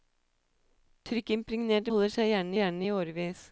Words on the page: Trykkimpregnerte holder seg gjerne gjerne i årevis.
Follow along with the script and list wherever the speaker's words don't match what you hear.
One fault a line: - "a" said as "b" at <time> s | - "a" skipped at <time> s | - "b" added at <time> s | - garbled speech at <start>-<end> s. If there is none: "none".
none